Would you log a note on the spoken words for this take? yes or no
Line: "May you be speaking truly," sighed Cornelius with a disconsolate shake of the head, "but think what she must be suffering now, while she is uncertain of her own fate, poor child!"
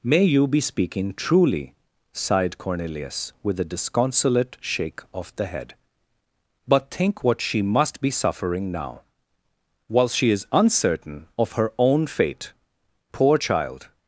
no